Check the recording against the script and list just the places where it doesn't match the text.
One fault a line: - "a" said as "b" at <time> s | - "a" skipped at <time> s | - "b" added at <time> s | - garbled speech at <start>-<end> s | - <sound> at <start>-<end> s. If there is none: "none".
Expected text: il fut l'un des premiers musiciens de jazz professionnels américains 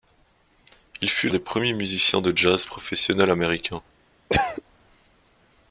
- "l'un" skipped at 1.3 s
- cough at 4.3-4.6 s